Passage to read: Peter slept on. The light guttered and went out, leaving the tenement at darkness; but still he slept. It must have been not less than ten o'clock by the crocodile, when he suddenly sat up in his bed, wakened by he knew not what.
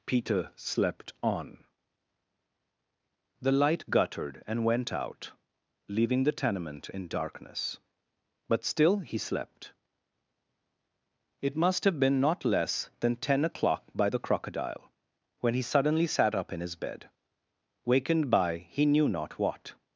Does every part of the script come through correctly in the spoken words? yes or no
no